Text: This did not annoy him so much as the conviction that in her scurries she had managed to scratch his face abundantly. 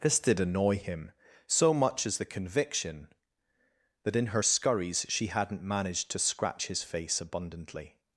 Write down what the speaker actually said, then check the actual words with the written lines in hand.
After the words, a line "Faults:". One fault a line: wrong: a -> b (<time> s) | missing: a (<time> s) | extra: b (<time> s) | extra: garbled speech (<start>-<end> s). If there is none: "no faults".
This did annoy him so much as the conviction that in her scurries she hadn't managed to scratch his face abundantly.
Faults:
missing: not (0.4 s)
wrong: had -> hadn't (5.3 s)